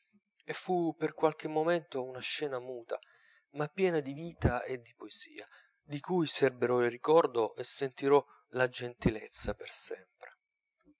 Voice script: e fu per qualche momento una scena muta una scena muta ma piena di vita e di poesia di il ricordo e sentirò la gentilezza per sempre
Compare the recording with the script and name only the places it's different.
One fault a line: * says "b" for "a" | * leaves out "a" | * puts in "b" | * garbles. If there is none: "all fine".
* leaves out "una scena muta"
* puts in "cui serberò"